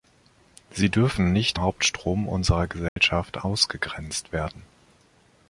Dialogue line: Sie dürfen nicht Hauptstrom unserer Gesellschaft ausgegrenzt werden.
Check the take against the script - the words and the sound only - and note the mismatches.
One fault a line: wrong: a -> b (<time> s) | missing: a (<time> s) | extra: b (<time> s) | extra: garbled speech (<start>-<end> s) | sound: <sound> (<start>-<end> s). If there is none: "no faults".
sound: dropout (2.9-3.0 s)